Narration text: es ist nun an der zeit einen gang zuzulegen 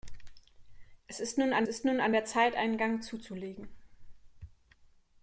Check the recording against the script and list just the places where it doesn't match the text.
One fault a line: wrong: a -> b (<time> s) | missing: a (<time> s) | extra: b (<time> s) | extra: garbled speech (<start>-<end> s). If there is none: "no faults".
extra: ist nun an (1.7 s)